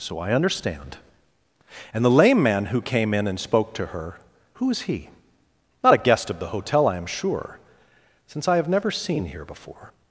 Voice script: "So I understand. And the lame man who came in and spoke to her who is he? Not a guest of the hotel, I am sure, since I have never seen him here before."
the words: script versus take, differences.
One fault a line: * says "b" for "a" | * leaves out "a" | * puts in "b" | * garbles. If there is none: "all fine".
* leaves out "him"